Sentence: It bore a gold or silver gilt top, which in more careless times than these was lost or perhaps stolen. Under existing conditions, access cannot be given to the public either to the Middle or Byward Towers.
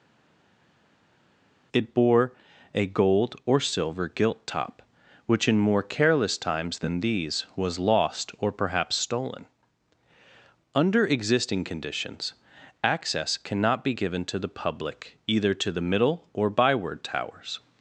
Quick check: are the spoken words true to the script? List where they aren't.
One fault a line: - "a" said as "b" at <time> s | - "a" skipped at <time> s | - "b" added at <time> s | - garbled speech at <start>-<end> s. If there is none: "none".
none